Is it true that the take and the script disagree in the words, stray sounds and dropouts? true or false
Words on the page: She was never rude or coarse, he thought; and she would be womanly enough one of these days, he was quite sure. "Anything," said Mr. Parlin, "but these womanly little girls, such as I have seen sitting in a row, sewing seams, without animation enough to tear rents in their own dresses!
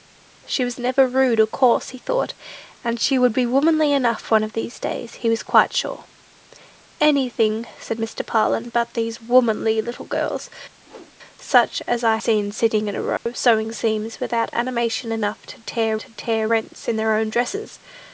true